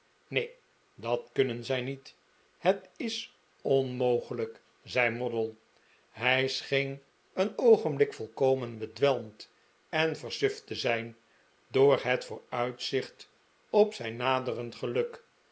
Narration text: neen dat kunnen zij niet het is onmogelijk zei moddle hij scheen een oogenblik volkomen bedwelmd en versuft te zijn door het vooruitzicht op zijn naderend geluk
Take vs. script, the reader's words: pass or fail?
pass